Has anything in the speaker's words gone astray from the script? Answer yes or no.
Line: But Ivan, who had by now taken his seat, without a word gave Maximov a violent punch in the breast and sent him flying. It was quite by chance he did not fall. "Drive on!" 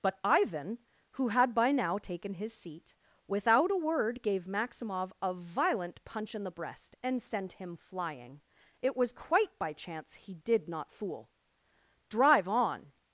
yes